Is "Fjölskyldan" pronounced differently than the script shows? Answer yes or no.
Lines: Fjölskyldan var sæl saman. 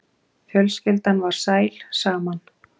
no